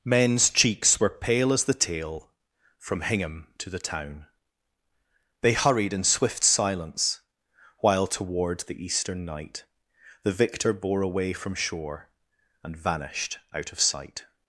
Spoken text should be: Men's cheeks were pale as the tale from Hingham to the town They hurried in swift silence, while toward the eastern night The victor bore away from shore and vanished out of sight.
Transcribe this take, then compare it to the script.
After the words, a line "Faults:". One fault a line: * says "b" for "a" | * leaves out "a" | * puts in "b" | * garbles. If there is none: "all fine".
Men's cheeks were pale as the tale from Hingham to the town They hurried in swift silence, while toward the eastern night The victor bore away from shore and vanished out of sight.
Faults:
all fine